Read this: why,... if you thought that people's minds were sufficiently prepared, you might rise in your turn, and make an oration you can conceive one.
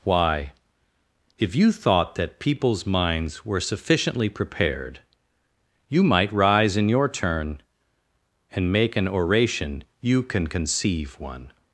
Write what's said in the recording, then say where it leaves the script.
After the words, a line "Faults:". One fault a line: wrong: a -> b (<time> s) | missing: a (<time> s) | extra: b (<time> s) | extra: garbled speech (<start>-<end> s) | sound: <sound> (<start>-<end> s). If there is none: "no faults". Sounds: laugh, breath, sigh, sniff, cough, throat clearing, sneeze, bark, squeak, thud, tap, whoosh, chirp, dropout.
why,... if you thought that people's minds were sufficiently prepared, you might rise in your turn, and make an oration you can conceive one.
Faults:
no faults